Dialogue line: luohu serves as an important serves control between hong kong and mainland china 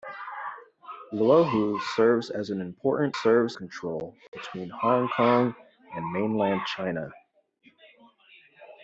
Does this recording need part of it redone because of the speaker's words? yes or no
no